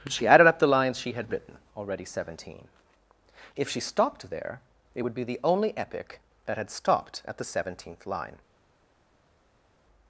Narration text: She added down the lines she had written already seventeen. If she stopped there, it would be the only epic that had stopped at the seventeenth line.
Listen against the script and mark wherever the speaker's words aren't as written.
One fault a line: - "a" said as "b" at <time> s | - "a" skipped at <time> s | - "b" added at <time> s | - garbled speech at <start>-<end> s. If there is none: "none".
- "down" said as "up" at 0.5 s